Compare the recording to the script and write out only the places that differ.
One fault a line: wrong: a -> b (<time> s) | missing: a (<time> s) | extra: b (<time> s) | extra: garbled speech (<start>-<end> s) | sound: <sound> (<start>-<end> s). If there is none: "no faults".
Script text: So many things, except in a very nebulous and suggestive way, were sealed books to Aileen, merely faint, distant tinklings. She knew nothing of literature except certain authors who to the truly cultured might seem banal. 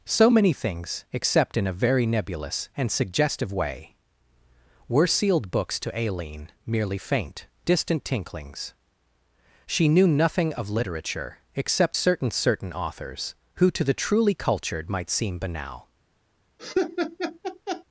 extra: certain (12.3 s)
sound: laugh (16.6-17.8 s)